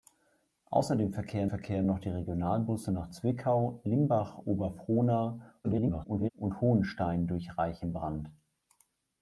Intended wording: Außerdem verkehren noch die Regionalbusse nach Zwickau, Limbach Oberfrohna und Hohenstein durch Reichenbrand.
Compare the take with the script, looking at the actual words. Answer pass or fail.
fail